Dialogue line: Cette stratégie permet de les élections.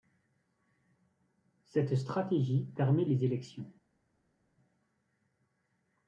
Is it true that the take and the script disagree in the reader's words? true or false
false